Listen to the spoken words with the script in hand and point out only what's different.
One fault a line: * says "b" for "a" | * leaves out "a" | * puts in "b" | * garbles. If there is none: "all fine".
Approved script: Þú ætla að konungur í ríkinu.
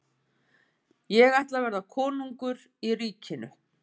* says "Ég" for "Þú"
* puts in "verða"